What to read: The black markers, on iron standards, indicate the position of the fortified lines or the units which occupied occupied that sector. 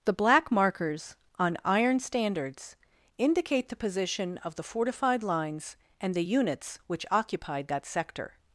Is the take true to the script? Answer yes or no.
no